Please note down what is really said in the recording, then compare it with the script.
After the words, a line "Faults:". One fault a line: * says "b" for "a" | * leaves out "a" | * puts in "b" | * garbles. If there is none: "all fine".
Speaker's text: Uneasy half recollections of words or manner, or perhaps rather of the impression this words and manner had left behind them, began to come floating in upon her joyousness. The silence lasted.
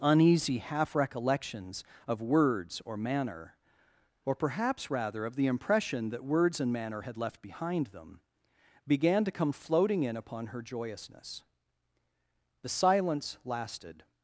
Uneasy half recollections of words or manner, or perhaps rather of the impression that words and manner had left behind them, began to come floating in upon her joyousness. The silence lasted.
Faults:
* says "that" for "this"